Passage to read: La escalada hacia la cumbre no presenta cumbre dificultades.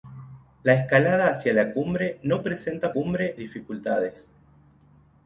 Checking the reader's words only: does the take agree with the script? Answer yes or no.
yes